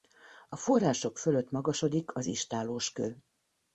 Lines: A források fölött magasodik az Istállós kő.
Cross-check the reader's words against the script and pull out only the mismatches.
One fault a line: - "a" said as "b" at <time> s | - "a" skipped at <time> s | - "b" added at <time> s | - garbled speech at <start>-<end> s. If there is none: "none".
none